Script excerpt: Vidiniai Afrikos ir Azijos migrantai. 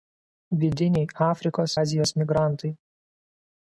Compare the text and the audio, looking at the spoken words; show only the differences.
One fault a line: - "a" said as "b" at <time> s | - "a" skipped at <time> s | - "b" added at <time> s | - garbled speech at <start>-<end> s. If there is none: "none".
- "ir" skipped at 1.8 s